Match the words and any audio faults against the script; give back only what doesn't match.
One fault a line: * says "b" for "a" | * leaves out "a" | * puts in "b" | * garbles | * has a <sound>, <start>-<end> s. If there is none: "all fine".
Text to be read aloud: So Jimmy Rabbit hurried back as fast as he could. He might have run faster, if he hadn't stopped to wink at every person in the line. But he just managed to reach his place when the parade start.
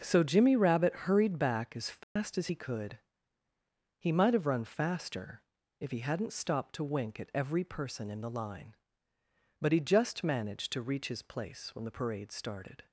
* has a dropout, 2.0-2.2 s
* says "started" for "start"